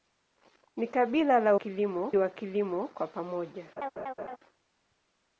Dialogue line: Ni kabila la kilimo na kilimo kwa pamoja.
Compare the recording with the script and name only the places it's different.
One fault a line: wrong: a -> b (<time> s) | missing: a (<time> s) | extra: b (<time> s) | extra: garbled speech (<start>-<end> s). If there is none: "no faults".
no faults